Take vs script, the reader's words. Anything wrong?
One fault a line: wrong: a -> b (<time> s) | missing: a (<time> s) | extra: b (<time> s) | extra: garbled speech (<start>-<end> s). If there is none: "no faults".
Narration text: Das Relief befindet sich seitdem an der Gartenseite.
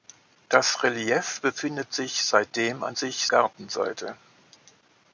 wrong: der -> sich (3.0 s)